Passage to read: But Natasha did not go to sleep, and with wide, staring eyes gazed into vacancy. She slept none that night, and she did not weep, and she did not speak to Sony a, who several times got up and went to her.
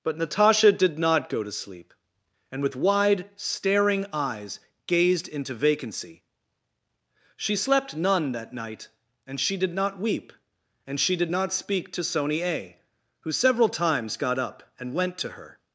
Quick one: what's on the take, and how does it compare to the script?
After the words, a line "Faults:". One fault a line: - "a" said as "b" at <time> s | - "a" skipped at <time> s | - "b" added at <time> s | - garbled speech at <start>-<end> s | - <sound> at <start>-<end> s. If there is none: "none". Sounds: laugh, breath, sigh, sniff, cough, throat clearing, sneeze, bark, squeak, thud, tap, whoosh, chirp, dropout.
But Natasha did not go to sleep, and with wide, staring eyes gazed into vacancy. She slept none that night, and she did not weep, and she did not speak to Sony a, who several times got up and went to her.
Faults:
none